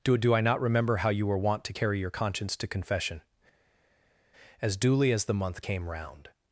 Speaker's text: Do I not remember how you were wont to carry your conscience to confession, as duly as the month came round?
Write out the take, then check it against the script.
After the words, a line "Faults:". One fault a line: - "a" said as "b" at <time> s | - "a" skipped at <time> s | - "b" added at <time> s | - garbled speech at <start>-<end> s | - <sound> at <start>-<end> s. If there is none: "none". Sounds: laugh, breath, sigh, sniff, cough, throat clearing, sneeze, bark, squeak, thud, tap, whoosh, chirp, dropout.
Do do I not remember how you were wont to carry your conscience to confession, as duly as the month came round?
Faults:
- "do" added at 0.2 s